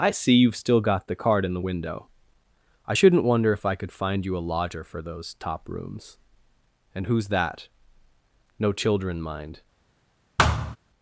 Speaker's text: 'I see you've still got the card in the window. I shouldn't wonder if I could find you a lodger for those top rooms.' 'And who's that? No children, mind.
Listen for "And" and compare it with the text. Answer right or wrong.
right